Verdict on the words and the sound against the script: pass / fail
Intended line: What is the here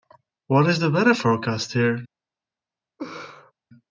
fail